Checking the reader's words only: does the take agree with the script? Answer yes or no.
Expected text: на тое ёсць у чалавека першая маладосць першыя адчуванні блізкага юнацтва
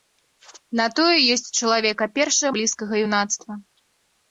no